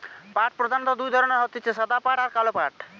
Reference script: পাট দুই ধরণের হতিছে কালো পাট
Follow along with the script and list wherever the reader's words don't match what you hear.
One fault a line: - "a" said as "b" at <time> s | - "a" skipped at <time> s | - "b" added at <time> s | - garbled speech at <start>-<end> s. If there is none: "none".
- "প্রধানত" added at 0.6 s
- "সাদা পাট আর" added at 1.7 s